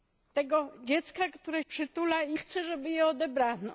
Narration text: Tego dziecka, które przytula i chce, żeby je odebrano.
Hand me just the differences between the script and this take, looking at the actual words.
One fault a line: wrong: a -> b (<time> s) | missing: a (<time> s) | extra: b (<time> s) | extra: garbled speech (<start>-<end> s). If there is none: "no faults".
no faults